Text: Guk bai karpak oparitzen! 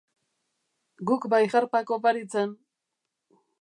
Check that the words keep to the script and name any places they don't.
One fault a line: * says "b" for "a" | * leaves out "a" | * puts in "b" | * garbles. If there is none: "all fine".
all fine